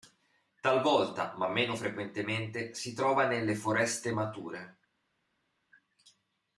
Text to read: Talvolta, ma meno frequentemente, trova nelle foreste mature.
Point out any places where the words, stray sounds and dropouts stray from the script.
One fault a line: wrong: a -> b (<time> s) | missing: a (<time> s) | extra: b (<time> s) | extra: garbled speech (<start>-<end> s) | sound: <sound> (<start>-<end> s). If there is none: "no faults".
extra: si (2.7 s)